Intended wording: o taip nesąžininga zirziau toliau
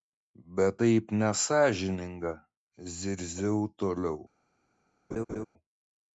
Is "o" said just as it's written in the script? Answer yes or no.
no